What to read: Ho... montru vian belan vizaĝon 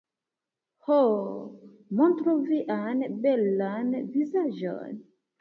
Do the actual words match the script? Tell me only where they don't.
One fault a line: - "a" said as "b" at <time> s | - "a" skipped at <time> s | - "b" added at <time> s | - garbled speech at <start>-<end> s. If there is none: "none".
none